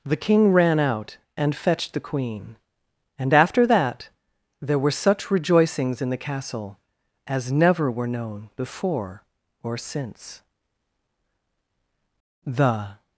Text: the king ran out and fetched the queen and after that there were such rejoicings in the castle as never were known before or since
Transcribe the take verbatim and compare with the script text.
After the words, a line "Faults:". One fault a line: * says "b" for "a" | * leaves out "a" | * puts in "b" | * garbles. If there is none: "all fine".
the king ran out and fetched the queen and after that there were such rejoicings in the castle as never were known before or since the
Faults:
* puts in "the"